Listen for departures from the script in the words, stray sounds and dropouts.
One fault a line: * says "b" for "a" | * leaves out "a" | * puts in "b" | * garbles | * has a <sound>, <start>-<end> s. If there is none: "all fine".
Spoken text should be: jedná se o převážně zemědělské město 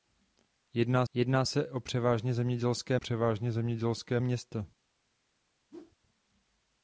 * puts in "jedná"
* puts in "převážně zemědělské"
* has a whoosh, 5.7-6.0 s